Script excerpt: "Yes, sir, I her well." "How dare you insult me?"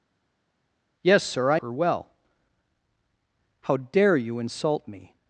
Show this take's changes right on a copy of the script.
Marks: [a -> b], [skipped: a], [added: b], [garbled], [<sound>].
"Yes, sir, I her well." "How dare you insult me?"